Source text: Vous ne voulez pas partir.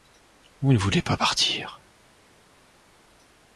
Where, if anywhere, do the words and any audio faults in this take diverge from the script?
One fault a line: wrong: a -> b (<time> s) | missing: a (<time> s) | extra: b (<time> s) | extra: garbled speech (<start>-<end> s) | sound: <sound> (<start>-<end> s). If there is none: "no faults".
no faults